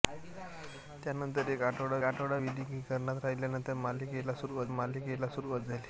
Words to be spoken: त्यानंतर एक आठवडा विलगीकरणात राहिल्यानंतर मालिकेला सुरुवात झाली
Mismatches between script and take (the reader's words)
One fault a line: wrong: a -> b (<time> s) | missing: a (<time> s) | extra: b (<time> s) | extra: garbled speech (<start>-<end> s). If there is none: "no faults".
extra: आठवडा (2.0 s)
extra: मालिकेला सुरुवात (4.7 s)